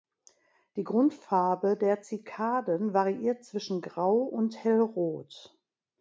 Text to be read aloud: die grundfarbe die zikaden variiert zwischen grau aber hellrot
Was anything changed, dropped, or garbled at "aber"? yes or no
yes